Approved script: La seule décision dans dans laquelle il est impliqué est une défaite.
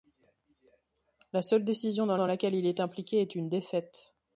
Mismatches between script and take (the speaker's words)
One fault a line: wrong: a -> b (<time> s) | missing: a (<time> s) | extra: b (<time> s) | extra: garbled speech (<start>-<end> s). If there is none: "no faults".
no faults